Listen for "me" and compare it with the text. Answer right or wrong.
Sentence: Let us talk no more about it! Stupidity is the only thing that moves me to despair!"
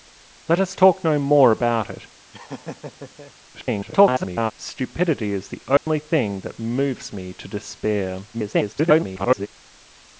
right